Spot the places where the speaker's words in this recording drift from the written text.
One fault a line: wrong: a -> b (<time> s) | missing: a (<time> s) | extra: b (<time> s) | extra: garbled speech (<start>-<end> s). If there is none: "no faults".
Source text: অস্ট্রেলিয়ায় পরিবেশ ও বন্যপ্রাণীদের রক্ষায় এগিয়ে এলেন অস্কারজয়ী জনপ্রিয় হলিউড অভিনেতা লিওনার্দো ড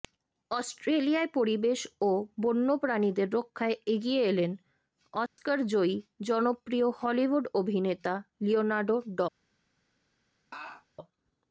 no faults